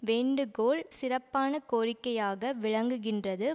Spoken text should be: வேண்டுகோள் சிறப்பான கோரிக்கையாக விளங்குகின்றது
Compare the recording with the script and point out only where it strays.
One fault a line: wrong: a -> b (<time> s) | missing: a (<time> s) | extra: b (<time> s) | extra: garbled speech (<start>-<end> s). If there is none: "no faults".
no faults